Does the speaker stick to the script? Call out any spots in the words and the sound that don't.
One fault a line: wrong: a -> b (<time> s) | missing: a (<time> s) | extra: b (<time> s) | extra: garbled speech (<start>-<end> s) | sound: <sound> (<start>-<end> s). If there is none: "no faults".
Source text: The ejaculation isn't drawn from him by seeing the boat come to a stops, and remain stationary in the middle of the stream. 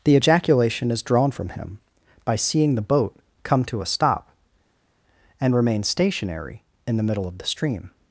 wrong: isn't -> is (0.9 s)
wrong: stops -> stop (3.9 s)